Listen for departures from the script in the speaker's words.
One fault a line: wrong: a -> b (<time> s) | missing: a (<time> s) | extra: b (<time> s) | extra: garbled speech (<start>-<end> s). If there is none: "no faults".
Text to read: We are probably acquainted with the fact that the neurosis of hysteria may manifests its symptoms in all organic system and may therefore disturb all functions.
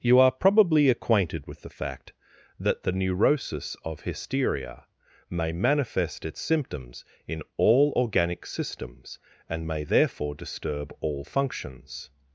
wrong: We -> You (0.0 s)
wrong: manifests -> manifest (5.5 s)
wrong: system -> systems (8.4 s)